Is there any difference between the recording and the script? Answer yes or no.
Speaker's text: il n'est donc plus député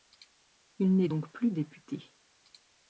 no